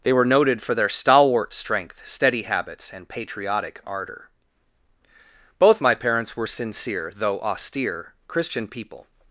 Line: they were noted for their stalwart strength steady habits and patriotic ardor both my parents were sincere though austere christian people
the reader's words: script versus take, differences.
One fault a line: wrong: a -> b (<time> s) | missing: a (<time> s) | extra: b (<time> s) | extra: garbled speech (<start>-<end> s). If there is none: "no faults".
no faults